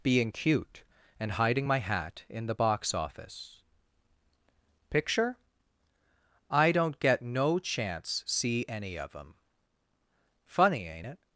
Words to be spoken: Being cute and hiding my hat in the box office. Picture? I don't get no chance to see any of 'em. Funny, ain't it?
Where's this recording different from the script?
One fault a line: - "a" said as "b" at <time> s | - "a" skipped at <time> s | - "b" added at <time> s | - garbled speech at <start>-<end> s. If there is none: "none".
- "to" skipped at 8.2 s